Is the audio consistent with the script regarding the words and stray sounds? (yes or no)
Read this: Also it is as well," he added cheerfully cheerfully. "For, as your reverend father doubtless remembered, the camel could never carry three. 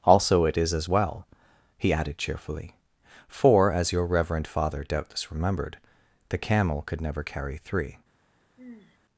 no